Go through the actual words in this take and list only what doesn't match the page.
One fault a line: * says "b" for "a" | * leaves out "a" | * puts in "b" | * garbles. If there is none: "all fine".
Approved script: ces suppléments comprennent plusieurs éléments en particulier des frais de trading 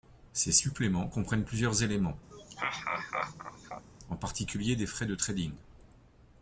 all fine